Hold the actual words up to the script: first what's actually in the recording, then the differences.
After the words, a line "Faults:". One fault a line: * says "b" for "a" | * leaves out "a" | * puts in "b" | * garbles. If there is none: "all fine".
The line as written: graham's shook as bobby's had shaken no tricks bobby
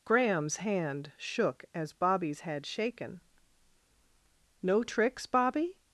graham's hand shook as bobby's had shaken no tricks bobby
Faults:
* puts in "hand"